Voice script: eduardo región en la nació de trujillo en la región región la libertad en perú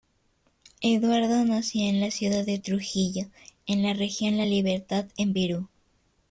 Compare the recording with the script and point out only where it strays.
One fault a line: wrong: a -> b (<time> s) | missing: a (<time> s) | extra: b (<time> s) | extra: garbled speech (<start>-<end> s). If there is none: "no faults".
wrong: región -> nació (1.4 s)
wrong: nació -> ciudad (2.1 s)
missing: región (4.4 s)